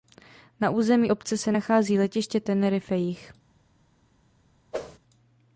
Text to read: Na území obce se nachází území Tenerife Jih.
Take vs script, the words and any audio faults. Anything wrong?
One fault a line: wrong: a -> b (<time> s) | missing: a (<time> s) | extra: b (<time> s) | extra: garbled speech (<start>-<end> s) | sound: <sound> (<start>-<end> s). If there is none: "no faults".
wrong: území -> letiště (2.0 s)
sound: whoosh (4.7-5.0 s)